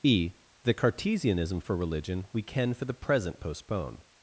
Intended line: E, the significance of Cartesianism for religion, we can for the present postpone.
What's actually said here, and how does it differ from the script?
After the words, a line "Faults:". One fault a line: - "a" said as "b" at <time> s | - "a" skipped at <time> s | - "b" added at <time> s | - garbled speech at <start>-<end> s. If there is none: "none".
E, the Cartesianism for religion, we can for the present postpone.
Faults:
- "significance of" skipped at 0.7 s